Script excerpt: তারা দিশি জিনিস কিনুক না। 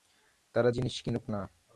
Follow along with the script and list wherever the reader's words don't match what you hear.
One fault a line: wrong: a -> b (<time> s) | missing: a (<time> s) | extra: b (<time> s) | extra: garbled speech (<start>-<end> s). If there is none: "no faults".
missing: দিশি (0.7 s)